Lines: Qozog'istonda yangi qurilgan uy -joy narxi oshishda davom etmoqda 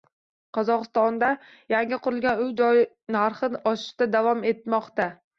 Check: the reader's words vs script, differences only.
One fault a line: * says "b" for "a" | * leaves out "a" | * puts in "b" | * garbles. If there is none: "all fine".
all fine